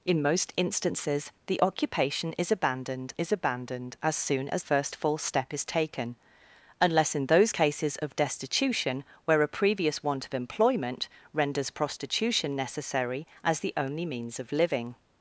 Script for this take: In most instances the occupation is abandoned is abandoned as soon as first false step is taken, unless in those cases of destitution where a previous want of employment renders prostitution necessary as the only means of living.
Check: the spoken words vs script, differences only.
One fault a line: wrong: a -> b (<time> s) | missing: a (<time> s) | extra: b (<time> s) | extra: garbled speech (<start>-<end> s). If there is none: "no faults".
no faults